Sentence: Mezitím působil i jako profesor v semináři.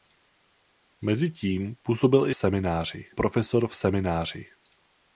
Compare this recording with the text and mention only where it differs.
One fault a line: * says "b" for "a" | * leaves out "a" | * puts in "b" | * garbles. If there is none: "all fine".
* says "semináři" for "jako"